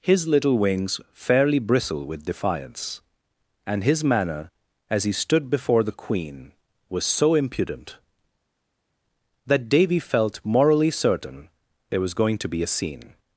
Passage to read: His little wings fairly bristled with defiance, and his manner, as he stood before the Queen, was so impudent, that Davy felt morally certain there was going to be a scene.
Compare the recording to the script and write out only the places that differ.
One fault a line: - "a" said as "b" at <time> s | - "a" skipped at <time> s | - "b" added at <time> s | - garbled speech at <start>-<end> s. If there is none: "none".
- "bristled" said as "bristle" at 1.6 s